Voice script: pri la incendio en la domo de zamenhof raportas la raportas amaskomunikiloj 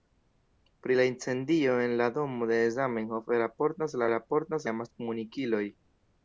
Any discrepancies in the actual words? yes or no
no